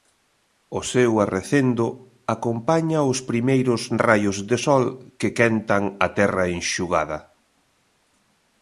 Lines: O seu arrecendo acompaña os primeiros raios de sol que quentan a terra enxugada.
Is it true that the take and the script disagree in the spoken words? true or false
false